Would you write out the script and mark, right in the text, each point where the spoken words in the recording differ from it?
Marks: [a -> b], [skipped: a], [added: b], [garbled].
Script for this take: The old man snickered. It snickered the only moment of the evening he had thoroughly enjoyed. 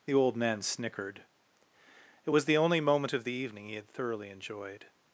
The old man snickered. It [snickered -> was] the only moment of the evening he had thoroughly enjoyed.